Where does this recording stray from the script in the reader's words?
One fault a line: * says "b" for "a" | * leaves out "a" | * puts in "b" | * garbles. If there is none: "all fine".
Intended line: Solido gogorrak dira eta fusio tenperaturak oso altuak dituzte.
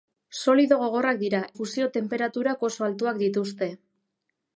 * leaves out "eta"